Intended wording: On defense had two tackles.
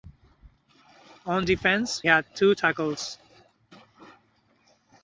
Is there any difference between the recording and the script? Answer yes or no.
no